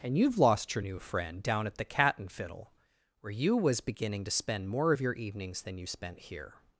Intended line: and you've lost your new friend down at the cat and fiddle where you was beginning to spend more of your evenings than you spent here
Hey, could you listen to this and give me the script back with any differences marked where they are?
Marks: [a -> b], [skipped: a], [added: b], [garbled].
and you've lost your new friend down at the cat and fiddle where you was beginning to spend more of your evenings than you spent here